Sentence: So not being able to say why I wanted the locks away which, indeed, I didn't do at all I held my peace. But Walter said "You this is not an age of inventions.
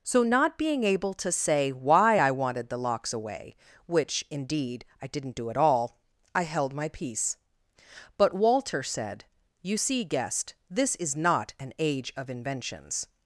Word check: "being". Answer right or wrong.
right